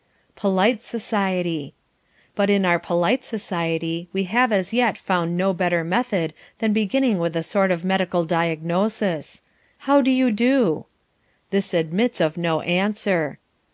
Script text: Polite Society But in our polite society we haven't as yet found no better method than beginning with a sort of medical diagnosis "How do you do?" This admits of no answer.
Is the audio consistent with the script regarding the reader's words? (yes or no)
no